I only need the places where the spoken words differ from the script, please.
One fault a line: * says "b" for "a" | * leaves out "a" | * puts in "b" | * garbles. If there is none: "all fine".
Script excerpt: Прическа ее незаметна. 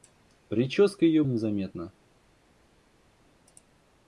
all fine